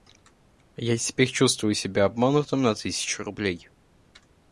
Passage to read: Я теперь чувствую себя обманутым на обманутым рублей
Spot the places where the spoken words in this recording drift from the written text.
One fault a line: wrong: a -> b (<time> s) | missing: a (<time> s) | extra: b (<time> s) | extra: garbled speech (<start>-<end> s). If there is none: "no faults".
wrong: обманутым -> тысячу (2.7 s)